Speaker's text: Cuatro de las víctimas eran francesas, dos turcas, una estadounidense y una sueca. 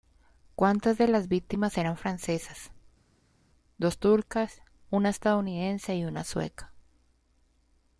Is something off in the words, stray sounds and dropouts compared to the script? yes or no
no